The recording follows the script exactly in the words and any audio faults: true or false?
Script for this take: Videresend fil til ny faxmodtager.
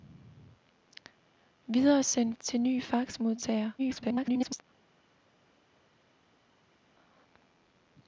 false